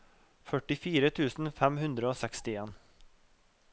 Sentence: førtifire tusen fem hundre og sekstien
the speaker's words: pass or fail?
pass